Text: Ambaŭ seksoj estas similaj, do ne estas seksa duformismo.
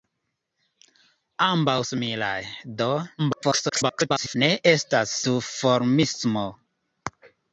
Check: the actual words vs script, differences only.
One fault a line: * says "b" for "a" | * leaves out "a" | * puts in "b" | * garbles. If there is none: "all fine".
* leaves out "seksoj estas"
* garbles
* leaves out "seksa"